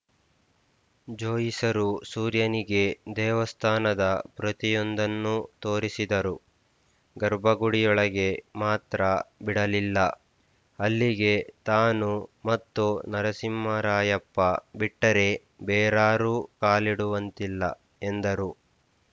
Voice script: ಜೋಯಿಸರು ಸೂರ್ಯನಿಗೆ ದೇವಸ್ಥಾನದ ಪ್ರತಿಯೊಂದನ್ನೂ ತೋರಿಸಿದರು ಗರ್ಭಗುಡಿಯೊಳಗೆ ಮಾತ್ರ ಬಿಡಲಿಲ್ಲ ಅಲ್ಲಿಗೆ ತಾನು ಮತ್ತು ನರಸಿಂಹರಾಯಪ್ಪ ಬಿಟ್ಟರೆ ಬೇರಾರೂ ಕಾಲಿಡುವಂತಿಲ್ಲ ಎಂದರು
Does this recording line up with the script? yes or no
yes